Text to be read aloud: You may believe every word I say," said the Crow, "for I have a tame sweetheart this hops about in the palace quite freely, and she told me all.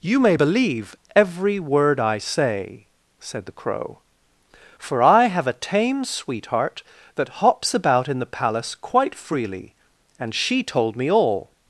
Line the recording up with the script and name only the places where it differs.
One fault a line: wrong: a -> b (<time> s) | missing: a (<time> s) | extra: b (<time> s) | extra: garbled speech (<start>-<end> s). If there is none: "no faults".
wrong: this -> that (7.2 s)